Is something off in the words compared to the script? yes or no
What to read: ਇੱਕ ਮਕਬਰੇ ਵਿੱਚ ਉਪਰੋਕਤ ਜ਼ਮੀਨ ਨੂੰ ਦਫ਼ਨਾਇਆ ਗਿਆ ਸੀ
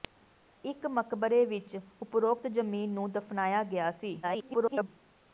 yes